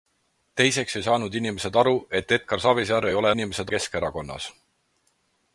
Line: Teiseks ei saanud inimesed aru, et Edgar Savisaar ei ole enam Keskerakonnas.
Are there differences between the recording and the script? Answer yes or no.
yes